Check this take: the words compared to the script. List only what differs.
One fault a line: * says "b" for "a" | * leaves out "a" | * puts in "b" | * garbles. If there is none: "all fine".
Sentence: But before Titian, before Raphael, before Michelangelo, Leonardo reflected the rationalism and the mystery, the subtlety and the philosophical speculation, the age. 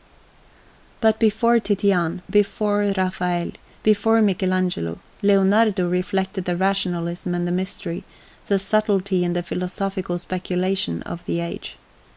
* puts in "of"